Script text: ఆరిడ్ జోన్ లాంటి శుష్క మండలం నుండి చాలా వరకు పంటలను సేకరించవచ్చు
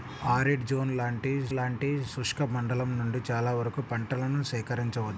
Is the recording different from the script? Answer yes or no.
yes